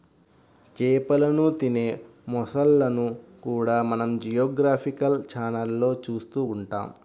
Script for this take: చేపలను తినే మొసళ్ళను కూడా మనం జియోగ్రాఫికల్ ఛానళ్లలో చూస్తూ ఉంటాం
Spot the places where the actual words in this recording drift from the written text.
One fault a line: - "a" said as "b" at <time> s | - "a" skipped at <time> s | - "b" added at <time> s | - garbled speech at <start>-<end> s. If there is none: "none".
none